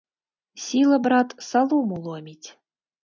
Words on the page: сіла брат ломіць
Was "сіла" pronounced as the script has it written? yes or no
yes